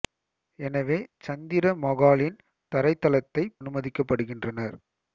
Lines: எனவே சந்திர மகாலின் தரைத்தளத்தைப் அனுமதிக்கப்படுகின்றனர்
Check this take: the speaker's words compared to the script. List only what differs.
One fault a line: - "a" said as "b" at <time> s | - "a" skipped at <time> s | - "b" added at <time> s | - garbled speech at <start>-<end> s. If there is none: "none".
none